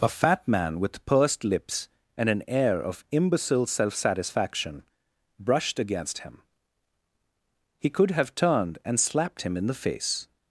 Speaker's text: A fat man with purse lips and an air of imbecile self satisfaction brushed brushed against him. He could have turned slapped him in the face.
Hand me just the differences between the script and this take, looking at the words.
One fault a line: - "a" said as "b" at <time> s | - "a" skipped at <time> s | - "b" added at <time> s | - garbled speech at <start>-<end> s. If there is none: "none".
- "purse" said as "pursed" at 1.1 s
- "brushed" skipped at 5.8 s
- "and" added at 8.8 s